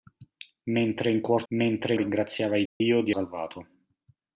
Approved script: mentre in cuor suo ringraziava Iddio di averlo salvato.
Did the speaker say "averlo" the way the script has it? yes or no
no